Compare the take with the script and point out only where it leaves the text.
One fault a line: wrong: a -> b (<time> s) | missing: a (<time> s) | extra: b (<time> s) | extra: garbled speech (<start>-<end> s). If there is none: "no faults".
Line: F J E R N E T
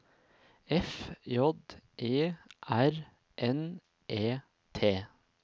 no faults